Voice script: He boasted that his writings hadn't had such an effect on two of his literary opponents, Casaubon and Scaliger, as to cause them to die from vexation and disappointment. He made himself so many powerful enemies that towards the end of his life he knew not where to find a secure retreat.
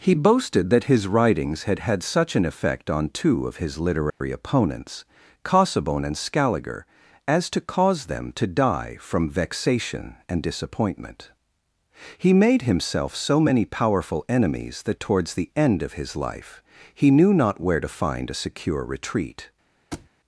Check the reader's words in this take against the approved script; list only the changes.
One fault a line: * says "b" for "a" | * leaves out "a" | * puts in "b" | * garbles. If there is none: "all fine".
* says "had" for "hadn't"